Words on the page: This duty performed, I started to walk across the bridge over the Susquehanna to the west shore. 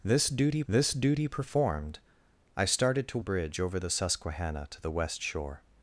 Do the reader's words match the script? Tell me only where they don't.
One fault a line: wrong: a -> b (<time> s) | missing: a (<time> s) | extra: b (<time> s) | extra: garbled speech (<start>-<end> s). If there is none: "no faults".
extra: this duty (0.7 s)
missing: walk across the (3.2 s)